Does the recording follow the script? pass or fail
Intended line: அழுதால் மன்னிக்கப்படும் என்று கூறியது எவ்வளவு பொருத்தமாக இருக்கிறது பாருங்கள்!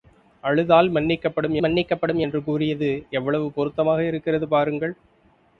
fail